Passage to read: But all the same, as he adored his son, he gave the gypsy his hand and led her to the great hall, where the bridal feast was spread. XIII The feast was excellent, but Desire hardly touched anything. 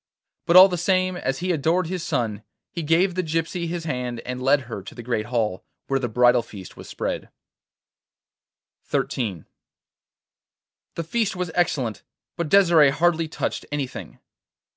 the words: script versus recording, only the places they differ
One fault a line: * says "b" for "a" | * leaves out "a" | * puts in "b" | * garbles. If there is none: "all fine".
all fine